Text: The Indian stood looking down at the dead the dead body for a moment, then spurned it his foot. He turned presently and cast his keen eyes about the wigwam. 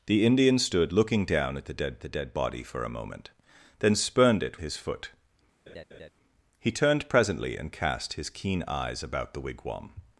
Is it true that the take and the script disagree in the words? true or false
false